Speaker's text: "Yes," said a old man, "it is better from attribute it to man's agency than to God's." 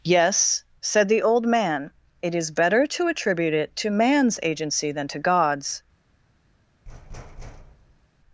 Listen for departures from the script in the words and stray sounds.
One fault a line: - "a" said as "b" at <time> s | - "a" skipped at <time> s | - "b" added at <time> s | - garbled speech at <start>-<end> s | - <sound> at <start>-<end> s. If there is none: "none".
- "a" said as "the" at 1.1 s
- "from" said as "to" at 2.9 s
- thud at 6.9-8.1 s